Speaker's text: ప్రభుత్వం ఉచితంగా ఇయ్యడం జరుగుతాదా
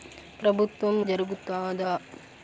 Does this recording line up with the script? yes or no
no